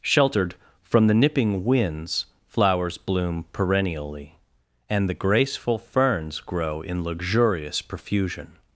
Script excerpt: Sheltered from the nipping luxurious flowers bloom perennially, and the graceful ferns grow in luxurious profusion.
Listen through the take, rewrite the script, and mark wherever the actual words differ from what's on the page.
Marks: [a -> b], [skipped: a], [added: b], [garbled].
Sheltered from the nipping [luxurious -> winds] flowers bloom perennially, and the graceful ferns grow in luxurious profusion.